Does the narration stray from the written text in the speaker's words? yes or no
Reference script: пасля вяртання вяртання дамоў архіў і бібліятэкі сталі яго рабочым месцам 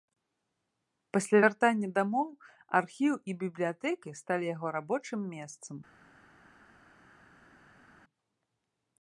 yes